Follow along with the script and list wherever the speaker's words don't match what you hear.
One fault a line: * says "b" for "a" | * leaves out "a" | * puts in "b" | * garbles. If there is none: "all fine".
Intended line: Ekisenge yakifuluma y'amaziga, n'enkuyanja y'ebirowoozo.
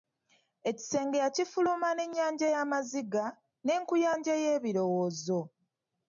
* puts in "n'ennyanja"